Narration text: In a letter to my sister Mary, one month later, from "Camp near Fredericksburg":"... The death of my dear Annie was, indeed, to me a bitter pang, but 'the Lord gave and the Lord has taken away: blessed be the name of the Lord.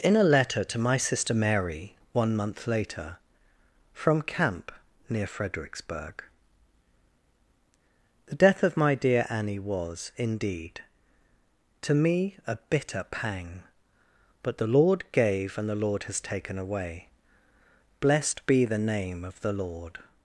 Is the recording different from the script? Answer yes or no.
no